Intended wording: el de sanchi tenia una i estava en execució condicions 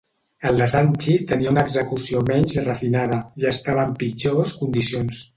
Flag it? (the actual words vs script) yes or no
yes